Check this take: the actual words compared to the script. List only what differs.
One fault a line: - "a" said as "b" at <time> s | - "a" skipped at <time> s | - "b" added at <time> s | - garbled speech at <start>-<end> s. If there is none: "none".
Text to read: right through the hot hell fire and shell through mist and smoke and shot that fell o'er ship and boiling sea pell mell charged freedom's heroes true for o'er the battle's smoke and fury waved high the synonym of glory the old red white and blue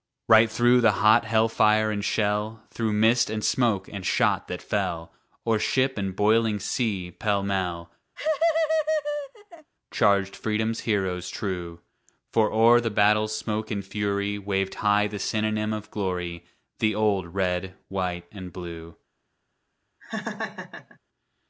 none